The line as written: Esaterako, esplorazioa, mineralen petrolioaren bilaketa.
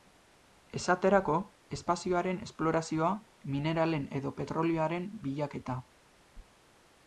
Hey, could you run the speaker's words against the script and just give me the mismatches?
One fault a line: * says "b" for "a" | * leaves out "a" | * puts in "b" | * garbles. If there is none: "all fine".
* puts in "espazioaren"
* puts in "edo"